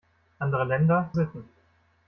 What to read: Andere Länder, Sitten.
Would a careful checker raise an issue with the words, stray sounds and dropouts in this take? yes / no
no